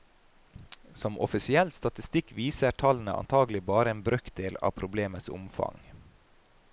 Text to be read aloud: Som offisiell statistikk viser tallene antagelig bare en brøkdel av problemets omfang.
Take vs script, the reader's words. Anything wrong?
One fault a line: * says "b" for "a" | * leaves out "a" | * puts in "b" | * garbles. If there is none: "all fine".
all fine